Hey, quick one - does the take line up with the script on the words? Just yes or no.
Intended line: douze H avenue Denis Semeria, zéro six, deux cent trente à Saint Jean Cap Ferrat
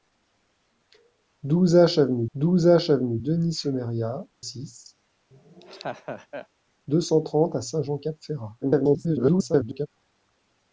no